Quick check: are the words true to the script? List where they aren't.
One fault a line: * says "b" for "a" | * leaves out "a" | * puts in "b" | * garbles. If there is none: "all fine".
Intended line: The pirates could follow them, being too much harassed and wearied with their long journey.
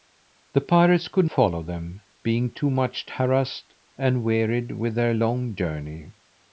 all fine